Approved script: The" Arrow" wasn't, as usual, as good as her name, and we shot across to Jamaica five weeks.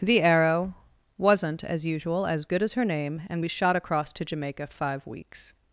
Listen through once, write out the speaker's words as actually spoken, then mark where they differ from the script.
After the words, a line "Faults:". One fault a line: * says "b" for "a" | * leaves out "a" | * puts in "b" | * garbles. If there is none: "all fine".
The" Arrow" wasn't, as usual, as good as her name, and we shot across to Jamaica five weeks.
Faults:
all fine